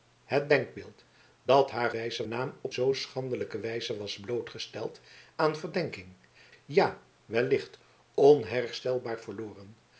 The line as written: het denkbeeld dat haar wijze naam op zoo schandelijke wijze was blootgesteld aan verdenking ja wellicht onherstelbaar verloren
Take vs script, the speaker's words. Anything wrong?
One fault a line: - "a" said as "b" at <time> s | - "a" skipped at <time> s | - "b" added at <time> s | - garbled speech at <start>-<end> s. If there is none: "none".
none